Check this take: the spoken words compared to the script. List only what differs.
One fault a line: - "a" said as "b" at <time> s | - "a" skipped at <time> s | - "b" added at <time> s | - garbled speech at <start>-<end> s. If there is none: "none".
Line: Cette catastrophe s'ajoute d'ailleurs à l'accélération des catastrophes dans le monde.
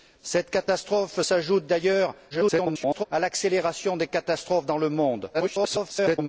- garbled speech at 2.3-3.1 s
- garbled speech at 5.3-6.3 s